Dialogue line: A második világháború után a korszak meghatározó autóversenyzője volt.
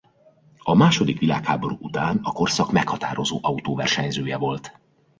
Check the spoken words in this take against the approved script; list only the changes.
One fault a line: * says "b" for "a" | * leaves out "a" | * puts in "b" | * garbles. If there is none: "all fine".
all fine